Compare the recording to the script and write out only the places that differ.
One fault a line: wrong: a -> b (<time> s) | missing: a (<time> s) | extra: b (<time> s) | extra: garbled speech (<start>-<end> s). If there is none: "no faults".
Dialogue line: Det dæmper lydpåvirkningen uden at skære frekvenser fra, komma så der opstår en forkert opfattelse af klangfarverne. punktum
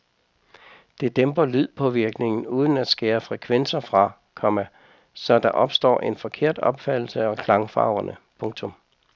no faults